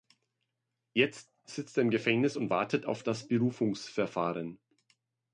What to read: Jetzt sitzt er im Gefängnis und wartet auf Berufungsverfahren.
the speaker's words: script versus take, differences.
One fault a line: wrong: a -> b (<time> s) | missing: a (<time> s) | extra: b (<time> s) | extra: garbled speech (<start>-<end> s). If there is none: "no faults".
extra: das (3.0 s)